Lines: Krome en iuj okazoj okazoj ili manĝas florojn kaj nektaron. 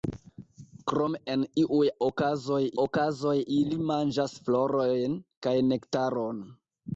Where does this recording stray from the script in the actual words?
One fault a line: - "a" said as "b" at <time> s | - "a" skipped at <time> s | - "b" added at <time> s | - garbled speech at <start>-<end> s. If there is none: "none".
none